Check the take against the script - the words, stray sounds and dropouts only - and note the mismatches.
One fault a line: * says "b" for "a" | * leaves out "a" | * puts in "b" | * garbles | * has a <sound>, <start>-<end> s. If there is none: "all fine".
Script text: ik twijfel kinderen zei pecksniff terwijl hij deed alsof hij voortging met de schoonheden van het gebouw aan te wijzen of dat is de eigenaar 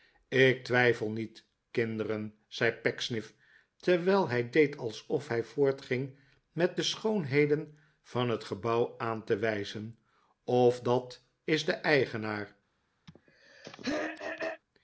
* puts in "niet"
* has a throat clearing, 13.1-14.6 s